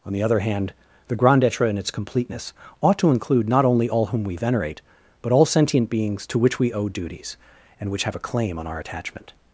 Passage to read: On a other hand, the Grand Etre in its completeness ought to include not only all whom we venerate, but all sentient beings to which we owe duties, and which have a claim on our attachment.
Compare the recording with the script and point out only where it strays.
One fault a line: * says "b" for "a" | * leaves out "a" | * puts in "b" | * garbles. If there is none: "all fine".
* says "the" for "a"